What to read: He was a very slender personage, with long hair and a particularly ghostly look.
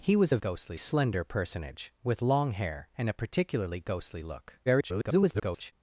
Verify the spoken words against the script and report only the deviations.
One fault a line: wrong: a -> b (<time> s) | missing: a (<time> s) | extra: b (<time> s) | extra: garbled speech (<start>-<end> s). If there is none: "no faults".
wrong: very -> ghostly (0.4 s)
extra: garbled speech (4.7-5.7 s)